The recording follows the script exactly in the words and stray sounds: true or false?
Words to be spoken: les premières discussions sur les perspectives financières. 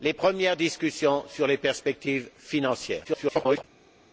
false